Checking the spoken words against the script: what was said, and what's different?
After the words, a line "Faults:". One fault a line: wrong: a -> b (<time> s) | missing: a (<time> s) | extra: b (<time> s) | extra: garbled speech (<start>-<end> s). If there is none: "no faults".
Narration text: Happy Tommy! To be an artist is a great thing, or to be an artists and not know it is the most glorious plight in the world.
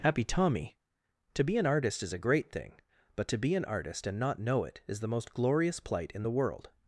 Happy Tommy! To be an artist is a great thing, but to be an artist and not know it is the most glorious plight in the world.
Faults:
wrong: or -> but (3.1 s)
wrong: artists -> artist (3.6 s)